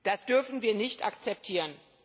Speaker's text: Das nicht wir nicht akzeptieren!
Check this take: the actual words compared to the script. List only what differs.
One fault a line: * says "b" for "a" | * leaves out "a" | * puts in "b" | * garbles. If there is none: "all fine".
* says "dürfen" for "nicht"